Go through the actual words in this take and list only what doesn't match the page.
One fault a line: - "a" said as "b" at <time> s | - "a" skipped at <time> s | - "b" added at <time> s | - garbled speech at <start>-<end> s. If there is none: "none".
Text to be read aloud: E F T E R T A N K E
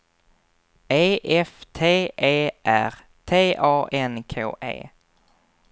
none